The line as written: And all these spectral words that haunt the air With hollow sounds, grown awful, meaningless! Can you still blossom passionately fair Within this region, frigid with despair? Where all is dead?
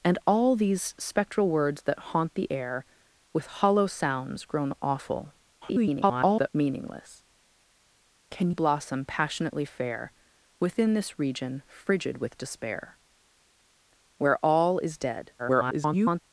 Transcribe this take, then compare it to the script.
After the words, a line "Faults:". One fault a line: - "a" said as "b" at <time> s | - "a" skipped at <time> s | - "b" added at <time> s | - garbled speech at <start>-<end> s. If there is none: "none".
And all these spectral words that haunt the air With hollow sounds, grown awful, [garbled] meaningless! Can blossom passionately fair Within this region, frigid with despair? Where all is dead? [garbled]
Faults:
- garbled speech at 5.6-6.5 s
- "you still" skipped at 8.5 s
- garbled speech at 15.4-16.2 s